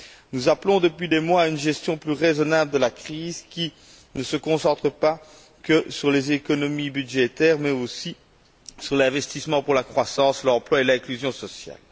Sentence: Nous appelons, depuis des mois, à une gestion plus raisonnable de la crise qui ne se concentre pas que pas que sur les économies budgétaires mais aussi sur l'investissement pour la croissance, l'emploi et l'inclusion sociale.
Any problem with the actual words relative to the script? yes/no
yes